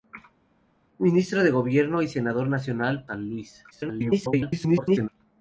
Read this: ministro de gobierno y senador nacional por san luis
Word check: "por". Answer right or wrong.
wrong